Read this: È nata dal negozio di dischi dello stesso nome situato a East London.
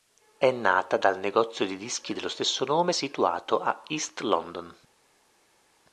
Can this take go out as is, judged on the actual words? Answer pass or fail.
pass